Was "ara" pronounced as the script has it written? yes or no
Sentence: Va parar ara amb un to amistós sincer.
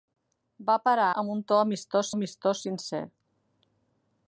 no